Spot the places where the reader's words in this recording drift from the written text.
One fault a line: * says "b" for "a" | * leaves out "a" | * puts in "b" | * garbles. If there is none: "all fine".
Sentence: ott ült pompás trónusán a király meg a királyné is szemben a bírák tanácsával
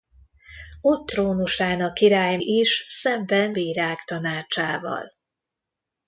* leaves out "ült pompás"
* leaves out "meg a királyné"
* leaves out "a"